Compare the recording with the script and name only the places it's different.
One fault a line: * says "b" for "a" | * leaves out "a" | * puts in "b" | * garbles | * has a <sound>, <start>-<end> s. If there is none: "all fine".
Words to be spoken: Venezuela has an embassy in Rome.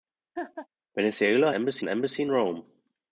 * has a laugh, 0.4-0.7 s
* says "embassy" for "has"